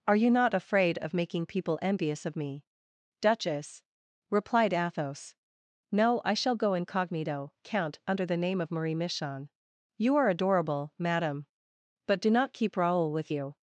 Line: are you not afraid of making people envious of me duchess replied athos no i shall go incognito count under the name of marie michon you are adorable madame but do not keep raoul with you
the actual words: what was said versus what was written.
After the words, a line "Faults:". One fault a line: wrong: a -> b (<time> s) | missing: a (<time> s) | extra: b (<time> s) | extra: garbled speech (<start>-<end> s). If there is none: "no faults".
are you not afraid of making people envious of me duchess replied athos no i shall go incognito count under the name of marie michon you are adorable madame but do not keep raoul with you
Faults:
no faults